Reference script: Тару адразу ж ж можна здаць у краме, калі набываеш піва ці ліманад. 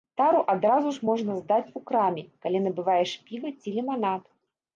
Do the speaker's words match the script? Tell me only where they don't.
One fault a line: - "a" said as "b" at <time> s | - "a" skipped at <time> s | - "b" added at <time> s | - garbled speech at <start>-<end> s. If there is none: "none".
- "ж" skipped at 1.1 s